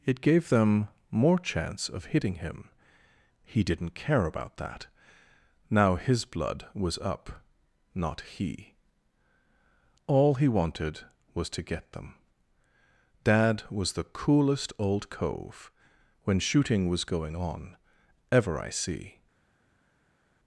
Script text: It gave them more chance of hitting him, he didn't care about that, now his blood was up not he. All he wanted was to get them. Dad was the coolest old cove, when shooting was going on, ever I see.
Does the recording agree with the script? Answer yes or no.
yes